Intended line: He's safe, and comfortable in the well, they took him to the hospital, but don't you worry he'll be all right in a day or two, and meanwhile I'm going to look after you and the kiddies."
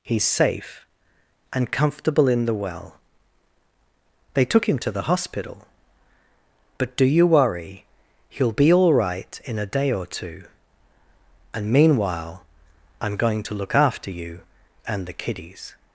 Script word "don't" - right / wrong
wrong